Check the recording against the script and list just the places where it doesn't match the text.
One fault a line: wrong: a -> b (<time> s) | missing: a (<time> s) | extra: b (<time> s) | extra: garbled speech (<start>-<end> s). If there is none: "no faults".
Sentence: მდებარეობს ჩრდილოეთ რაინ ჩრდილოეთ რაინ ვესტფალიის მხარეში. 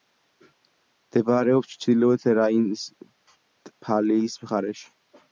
missing: ჩრდილოეთ რაინ (2.6 s)